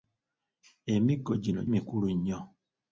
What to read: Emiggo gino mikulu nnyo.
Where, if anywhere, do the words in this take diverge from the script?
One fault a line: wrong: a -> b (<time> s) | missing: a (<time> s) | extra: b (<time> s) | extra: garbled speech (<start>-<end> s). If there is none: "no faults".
no faults